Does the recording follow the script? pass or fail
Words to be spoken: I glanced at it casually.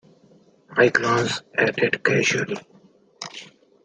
pass